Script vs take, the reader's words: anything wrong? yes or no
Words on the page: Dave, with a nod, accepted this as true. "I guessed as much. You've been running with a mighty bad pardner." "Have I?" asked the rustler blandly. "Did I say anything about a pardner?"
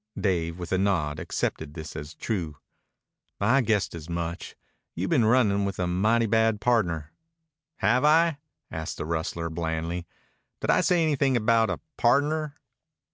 no